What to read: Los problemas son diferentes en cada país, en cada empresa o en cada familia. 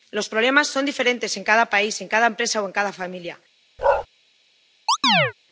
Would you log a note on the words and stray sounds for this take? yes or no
yes